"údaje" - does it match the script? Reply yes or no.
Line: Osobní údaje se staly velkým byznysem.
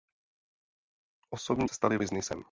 no